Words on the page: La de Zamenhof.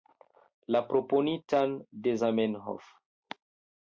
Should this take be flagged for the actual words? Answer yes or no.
yes